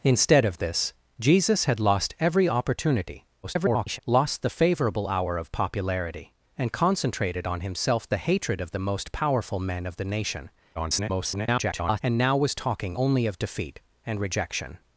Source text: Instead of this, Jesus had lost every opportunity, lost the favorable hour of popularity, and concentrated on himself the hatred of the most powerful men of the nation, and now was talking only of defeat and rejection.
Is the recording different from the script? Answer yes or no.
yes